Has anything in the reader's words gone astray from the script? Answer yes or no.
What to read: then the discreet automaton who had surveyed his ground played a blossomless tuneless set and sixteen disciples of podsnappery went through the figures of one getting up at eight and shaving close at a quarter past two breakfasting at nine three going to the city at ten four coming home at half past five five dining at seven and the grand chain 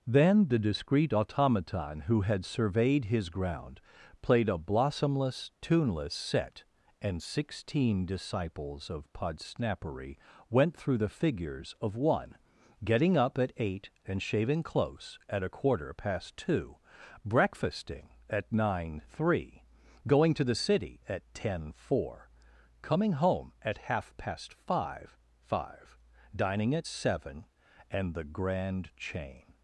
no